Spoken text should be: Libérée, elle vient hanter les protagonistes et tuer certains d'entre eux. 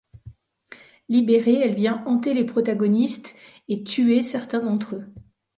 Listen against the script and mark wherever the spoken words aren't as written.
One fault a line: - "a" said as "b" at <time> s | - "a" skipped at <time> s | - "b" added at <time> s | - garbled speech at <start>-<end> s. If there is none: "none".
none